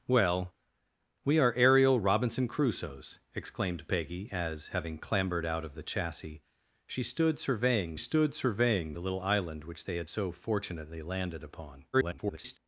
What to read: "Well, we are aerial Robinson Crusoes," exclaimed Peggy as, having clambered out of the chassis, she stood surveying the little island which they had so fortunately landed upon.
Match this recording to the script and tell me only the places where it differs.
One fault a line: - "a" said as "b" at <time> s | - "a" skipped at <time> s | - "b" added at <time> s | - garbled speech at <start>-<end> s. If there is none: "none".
- "stood surveying" added at 8.0 s
- garbled speech at 11.9-12.6 s